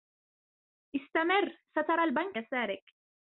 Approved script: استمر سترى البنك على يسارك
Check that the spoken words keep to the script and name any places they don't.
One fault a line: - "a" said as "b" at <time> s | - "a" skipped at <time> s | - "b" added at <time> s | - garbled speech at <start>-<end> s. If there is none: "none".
- "على" skipped at 2.4 s